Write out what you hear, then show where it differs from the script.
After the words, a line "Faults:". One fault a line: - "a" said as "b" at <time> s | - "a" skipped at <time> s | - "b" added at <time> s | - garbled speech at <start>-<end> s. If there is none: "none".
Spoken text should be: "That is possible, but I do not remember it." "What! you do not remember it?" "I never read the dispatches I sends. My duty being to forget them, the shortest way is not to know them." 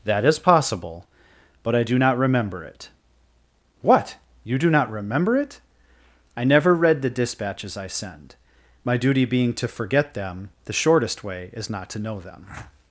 "That is possible, but I do not remember it." "What! you do not remember it?" "I never read the dispatches I send. My duty being to forget them, the shortest way is not to know them."
Faults:
- "sends" said as "send" at 7.9 s